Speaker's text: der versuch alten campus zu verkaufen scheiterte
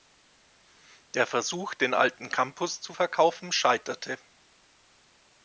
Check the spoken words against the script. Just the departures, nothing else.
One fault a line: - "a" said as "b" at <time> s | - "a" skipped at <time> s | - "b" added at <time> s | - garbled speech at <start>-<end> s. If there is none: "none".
- "den" added at 1.7 s